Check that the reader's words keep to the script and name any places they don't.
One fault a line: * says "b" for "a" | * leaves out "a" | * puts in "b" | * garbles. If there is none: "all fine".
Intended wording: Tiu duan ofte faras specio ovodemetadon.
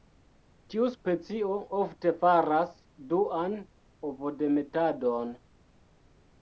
* says "specio" for "duan"
* says "duan" for "specio"